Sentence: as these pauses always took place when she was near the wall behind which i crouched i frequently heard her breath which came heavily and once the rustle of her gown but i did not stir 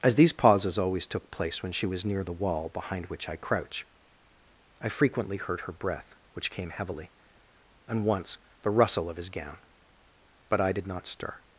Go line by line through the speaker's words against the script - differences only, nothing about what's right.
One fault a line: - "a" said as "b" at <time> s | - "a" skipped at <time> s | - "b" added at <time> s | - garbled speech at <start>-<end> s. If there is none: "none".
- "crouched" said as "crouch" at 3.4 s
- "her" said as "his" at 9.2 s